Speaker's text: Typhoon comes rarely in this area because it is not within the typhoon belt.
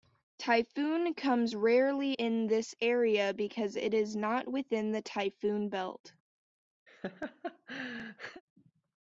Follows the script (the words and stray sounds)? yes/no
no